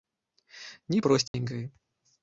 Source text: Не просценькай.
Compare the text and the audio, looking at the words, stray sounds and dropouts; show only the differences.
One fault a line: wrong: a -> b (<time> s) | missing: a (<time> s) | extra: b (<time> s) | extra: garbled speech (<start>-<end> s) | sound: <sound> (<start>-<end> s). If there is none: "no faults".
sound: dropout (1.3-1.3 s)